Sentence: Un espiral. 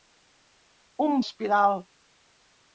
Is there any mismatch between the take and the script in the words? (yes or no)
no